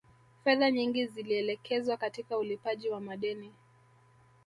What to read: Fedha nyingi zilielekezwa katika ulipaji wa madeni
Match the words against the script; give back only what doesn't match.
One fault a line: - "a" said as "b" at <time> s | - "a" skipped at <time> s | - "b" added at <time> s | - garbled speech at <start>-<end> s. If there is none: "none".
none